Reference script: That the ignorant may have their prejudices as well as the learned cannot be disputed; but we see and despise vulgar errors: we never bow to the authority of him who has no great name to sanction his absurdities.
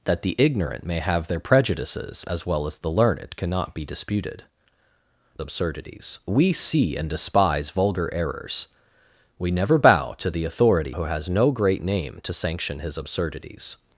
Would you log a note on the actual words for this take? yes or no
yes